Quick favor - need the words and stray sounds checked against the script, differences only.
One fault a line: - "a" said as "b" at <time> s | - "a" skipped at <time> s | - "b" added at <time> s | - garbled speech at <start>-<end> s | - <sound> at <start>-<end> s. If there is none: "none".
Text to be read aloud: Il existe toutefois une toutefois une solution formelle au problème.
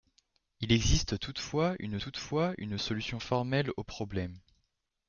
none